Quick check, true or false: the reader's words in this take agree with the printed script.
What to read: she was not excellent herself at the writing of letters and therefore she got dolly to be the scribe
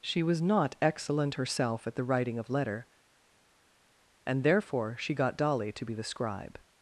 false